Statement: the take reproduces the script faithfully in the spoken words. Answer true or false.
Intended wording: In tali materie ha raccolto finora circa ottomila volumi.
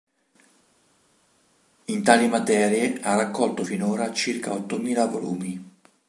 true